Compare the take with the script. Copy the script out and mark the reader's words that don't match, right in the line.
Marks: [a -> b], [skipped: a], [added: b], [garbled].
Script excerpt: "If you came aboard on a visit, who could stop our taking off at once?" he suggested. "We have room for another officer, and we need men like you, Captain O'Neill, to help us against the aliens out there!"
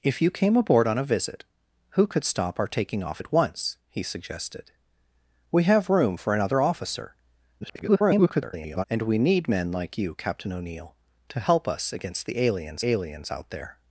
"If you came aboard on a visit, who could stop our taking off at once?" he suggested. "We have room for another officer, [garbled] and we need men like you, Captain O'Neill, to help us against the aliens [added: aliens] out there!"